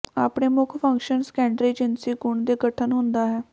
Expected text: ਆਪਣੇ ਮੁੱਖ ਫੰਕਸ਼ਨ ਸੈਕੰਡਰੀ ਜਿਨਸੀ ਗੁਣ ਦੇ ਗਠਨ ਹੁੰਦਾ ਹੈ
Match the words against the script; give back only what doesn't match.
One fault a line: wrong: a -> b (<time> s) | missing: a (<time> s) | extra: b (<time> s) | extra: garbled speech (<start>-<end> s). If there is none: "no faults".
no faults